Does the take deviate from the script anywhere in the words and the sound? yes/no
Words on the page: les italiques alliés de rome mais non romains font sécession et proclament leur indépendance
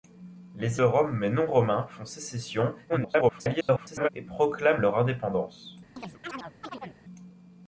yes